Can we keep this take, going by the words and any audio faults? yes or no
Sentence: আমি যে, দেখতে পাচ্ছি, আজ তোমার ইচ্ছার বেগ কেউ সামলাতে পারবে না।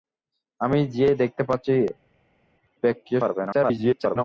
no